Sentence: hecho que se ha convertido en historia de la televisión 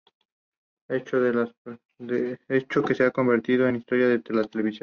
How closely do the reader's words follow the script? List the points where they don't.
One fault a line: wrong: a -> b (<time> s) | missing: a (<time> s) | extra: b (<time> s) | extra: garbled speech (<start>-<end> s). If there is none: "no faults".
no faults